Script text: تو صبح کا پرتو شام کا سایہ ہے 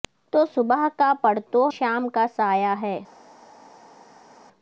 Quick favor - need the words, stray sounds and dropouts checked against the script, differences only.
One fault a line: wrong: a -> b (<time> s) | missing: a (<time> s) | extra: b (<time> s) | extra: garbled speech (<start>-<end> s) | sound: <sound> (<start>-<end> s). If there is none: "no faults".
no faults